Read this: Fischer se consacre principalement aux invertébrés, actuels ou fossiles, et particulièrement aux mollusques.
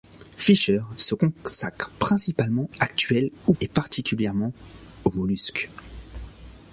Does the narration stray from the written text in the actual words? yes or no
yes